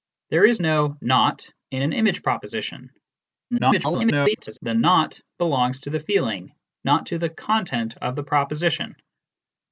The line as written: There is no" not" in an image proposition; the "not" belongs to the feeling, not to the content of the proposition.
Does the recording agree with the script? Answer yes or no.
no